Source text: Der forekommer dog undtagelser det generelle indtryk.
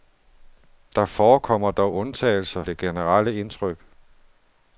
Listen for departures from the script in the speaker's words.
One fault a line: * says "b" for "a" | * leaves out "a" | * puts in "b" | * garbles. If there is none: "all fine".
all fine